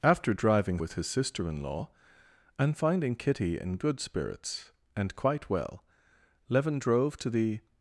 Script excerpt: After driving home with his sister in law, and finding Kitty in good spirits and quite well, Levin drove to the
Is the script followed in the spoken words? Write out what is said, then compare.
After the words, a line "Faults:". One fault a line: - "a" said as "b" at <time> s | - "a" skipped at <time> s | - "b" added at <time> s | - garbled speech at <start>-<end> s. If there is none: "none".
After driving with his sister in law, and finding Kitty in good spirits and quite well, Levin drove to the
Faults:
- "home" skipped at 0.8 s